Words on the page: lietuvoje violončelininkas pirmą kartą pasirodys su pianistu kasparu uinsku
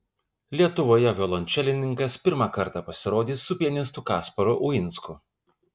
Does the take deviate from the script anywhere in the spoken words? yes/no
no